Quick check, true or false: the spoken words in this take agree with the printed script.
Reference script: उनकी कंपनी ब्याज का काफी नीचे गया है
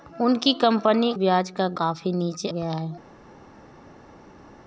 true